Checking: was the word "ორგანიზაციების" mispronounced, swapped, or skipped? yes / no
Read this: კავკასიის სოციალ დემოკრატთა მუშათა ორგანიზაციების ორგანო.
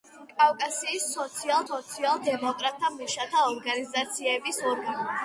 no